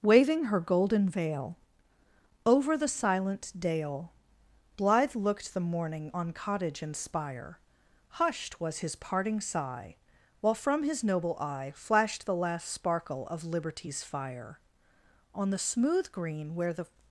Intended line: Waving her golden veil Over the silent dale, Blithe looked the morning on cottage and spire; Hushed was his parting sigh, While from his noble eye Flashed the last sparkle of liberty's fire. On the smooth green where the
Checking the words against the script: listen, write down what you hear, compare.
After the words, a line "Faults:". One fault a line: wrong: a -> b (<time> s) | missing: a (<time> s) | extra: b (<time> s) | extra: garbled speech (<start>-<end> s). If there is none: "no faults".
Waving her golden veil Over the silent dale, Blithe looked the morning on cottage and spire; Hushed was his parting sigh, While from his noble eye Flashed the last sparkle of liberty's fire. On the smooth green where the
Faults:
no faults